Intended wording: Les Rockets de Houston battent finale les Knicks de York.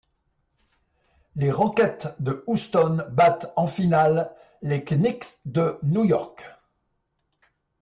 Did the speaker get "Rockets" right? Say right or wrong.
right